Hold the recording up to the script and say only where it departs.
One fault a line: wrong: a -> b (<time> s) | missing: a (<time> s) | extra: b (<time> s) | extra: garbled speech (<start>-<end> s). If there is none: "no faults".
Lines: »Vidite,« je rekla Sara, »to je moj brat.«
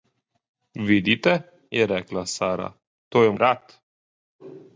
missing: moj (3.3 s)